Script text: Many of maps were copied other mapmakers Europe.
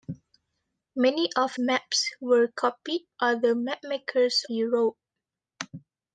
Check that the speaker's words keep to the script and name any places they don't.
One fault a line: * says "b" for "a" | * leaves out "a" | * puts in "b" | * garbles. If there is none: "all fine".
all fine